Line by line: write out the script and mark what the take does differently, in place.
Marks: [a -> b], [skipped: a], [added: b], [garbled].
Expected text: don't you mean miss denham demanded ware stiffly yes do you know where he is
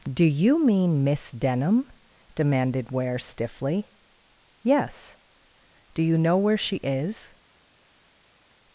[don't -> do] you mean miss denham demanded ware stiffly yes do you know where [he -> she] is